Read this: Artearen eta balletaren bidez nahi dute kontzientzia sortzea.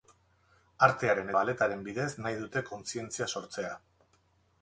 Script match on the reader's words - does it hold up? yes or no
no